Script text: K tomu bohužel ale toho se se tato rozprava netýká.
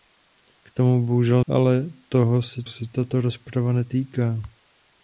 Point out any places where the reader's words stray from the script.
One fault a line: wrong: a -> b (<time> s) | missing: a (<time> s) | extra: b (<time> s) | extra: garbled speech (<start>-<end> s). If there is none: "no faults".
no faults